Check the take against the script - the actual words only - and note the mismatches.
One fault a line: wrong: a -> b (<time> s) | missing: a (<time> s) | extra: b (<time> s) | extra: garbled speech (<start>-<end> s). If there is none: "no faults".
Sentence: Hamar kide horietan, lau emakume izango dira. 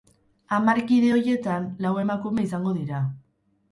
no faults